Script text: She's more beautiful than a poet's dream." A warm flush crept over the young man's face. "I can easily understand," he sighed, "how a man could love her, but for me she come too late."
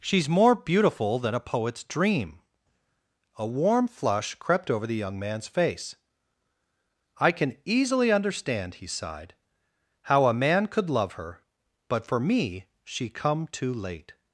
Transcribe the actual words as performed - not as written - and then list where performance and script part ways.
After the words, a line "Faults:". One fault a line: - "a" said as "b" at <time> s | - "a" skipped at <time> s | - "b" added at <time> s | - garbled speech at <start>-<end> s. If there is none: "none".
She's more beautiful than a poet's dream." A warm flush crept over the young man's face. "I can easily understand," he sighed, "how a man could love her, but for me she come too late."
Faults:
none